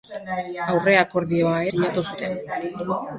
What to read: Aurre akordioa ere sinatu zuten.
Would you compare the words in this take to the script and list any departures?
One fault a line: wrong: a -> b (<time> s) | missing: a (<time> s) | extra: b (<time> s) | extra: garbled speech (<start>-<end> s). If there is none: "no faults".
missing: ere (1.6 s)